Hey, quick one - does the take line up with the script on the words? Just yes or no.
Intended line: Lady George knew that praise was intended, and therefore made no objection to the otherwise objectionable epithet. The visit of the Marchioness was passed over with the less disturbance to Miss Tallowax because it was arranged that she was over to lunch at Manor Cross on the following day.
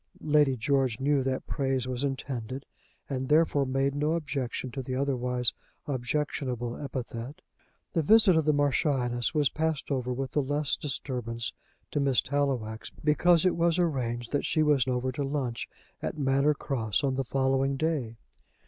yes